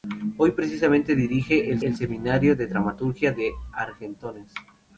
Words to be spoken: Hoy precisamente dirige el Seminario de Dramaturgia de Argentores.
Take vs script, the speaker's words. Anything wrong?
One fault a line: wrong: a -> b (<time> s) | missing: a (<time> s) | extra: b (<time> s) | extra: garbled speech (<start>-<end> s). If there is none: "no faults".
extra: el (1.8 s)